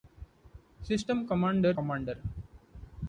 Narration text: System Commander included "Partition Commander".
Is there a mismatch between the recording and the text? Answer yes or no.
yes